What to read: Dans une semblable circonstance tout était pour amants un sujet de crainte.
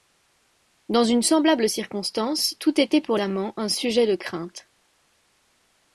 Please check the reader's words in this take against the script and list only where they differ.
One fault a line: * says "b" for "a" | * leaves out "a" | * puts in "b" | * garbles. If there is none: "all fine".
all fine